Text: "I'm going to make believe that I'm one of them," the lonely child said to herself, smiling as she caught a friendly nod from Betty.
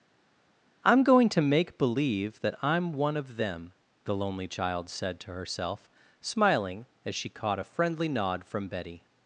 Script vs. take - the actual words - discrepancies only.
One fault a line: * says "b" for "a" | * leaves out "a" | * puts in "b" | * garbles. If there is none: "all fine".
all fine